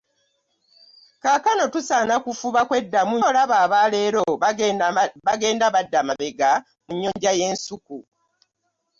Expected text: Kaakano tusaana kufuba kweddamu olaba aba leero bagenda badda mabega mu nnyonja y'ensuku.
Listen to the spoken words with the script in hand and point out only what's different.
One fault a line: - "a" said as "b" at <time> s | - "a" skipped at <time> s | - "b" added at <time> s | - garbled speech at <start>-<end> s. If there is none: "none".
none